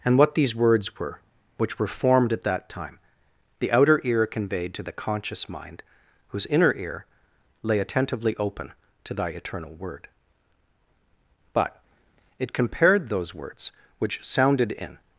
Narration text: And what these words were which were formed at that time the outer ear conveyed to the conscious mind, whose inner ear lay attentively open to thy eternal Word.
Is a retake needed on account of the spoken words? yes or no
yes